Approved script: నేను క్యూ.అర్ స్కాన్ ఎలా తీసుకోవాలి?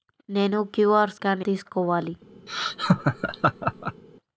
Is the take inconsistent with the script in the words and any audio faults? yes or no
yes